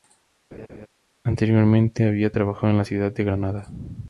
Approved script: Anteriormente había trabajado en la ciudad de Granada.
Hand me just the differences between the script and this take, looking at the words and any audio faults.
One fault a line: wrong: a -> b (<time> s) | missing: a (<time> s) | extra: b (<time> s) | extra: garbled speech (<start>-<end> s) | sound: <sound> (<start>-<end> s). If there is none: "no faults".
sound: laugh (0.5-0.9 s)